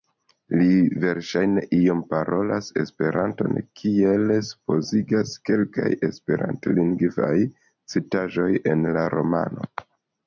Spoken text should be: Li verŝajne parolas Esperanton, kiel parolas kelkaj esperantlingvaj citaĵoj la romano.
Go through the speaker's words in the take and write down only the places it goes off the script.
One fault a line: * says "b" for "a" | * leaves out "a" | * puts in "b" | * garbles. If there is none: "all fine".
* puts in "iom"
* says "supozigas" for "parolas"
* puts in "en"